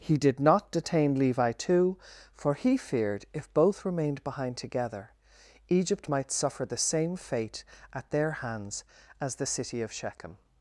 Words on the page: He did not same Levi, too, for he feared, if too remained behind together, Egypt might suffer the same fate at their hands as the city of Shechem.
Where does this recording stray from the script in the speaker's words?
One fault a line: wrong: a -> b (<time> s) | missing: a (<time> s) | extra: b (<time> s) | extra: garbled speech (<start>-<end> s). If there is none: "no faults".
wrong: same -> detain (0.7 s)
wrong: too -> both (3.5 s)